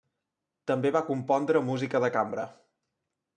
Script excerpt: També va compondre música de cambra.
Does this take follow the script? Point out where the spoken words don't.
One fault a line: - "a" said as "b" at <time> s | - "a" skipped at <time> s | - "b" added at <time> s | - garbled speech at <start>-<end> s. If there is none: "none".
none